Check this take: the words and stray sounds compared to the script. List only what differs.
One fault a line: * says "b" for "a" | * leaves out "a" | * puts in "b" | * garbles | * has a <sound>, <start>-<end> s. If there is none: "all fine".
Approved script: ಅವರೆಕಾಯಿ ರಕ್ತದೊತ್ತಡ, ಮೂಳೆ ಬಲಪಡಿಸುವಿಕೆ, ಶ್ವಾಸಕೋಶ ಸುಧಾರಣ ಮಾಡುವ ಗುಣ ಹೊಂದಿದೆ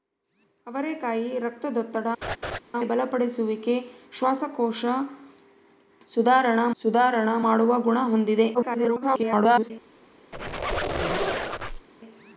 * leaves out "ಮೂಳೆ"
* has a laugh, 2.2-2.6 s
* puts in "ಸುಧಾರಣ"
* garbles
* has a squeak, 10.3-11.9 s